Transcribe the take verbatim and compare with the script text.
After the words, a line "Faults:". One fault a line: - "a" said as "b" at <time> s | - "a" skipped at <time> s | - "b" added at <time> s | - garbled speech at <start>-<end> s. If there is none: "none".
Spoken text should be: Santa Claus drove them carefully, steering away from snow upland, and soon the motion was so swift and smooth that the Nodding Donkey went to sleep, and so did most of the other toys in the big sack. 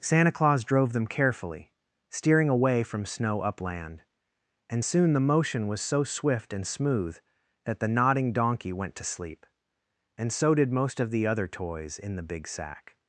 Santa Claus drove them carefully, steering away from snow upland, and soon the motion was so swift and smooth that the Nodding Donkey went to sleep, and so did most of the other toys in the big sack.
Faults:
none